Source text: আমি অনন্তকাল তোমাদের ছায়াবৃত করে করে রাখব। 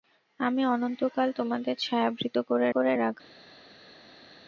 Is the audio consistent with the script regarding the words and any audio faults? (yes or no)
yes